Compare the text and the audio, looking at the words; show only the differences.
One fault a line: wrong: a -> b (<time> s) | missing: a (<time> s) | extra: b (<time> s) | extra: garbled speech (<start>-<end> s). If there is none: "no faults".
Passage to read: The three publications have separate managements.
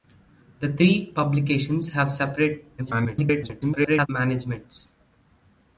extra: garbled speech (2.8-4.1 s)